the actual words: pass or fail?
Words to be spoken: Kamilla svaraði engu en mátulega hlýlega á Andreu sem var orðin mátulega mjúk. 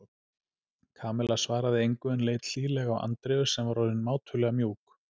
fail